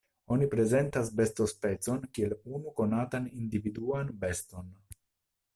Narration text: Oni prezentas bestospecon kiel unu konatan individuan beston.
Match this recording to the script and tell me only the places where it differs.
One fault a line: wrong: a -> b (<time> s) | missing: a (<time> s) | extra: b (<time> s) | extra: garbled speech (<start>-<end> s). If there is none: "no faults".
no faults